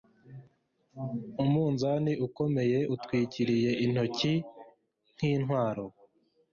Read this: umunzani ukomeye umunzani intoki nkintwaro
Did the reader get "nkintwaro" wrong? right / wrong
right